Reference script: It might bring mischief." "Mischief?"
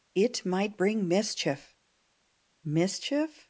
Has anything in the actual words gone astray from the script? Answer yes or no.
no